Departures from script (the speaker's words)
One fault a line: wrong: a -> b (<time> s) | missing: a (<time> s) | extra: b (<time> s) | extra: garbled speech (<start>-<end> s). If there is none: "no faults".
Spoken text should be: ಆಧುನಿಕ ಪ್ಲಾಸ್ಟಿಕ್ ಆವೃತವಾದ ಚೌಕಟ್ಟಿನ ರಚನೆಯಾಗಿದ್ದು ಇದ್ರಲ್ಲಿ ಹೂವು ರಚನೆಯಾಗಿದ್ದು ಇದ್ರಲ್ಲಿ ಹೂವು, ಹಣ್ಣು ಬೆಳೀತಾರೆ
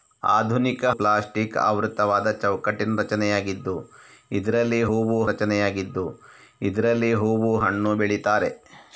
no faults